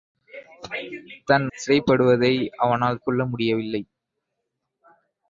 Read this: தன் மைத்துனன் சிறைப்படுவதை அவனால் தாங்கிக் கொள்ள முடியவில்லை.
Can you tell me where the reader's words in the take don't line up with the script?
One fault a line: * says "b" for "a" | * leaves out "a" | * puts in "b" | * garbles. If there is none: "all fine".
* leaves out "மைத்துனன்"
* leaves out "தாங்கிக்"